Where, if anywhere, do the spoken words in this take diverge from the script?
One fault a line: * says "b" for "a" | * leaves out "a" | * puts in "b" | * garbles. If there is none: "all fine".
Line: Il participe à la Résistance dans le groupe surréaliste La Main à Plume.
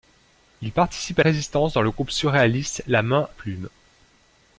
* leaves out "la"
* leaves out "à"